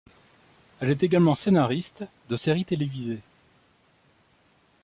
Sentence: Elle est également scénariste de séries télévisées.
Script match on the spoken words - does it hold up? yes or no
yes